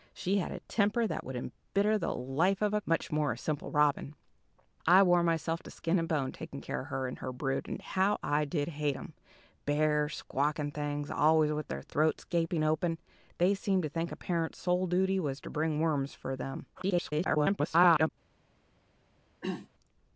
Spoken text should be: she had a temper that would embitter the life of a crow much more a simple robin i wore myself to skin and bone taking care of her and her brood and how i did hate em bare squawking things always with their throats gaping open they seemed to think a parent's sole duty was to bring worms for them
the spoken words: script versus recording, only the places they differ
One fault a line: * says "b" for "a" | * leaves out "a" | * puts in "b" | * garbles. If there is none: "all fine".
* leaves out "crow"
* garbles